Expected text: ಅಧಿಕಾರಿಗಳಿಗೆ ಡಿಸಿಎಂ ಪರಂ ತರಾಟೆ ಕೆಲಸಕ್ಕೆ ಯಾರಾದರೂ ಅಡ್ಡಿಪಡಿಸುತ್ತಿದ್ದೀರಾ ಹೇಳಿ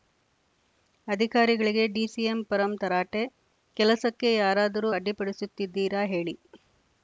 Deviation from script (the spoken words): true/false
false